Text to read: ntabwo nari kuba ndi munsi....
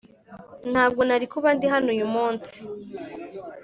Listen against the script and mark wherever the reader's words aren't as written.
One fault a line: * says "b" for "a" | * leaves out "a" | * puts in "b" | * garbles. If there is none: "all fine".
* puts in "hano uyu"